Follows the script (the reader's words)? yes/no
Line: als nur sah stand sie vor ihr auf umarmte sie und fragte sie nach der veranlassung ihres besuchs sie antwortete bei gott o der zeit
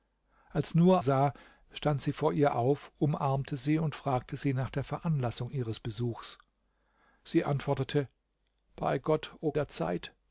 yes